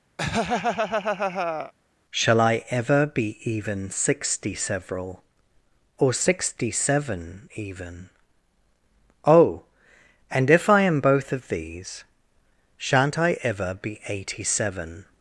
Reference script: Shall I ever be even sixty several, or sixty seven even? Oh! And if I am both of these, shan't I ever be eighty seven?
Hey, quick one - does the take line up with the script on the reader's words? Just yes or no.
yes